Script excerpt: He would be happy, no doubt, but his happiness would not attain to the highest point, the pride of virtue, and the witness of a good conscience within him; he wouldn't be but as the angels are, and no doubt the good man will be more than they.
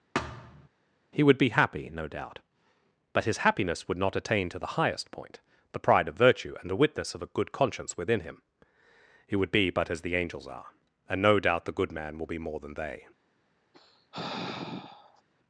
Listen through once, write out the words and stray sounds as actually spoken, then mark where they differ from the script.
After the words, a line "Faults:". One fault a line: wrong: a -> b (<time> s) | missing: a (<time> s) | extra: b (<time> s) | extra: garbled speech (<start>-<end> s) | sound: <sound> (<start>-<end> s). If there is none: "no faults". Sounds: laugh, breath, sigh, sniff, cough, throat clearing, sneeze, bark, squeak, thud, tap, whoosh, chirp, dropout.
He would be happy, no doubt, but his happiness would not attain to the highest point, the pride of virtue, and the witness of a good conscience within him; he would be but as the angels are, and no doubt the good man will be more than they.
Faults:
sound: thud (0.1-0.7 s)
wrong: wouldn't -> would (9.4 s)
sound: sigh (13.7-15.2 s)